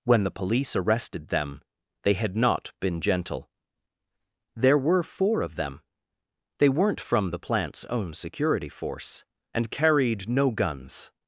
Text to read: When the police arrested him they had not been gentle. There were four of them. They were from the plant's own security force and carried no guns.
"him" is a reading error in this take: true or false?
true